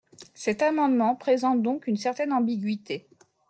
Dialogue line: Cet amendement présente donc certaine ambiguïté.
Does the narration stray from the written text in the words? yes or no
yes